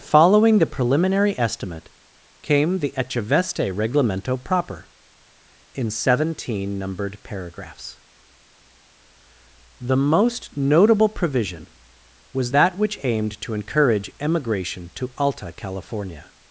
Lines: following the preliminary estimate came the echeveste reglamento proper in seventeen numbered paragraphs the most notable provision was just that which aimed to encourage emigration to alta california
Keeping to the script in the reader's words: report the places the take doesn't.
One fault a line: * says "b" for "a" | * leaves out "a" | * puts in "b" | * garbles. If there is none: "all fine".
* leaves out "just"